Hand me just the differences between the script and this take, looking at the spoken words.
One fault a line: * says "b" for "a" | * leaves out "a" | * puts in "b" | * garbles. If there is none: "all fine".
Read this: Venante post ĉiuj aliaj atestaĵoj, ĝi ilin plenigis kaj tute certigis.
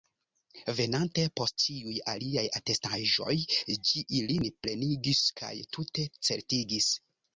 all fine